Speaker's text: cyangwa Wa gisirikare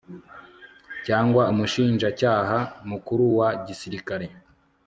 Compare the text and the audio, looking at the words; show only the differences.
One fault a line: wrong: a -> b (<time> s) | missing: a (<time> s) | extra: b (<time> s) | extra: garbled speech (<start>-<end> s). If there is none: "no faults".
extra: Umushinjacyaha Mukuru (1.5 s)